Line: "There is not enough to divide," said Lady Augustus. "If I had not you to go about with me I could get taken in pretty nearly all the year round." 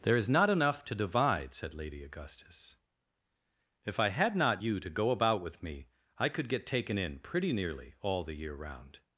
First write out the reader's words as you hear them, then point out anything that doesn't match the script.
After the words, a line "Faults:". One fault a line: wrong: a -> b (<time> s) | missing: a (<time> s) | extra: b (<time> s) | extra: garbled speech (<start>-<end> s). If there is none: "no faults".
"There is not enough to divide," said Lady Augustus. "If I had not you to go about with me I could get taken in pretty nearly all the year round."
Faults:
no faults